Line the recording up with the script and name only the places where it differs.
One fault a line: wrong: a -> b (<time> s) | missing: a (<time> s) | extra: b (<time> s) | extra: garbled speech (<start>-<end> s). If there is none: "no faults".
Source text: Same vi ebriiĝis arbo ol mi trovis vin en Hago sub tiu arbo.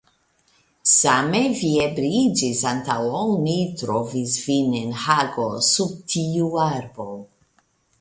wrong: arbo -> antaŭ (2.7 s)